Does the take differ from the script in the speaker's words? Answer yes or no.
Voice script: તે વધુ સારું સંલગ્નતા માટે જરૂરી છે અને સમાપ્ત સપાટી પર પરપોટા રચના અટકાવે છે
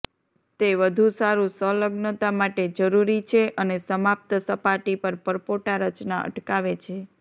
no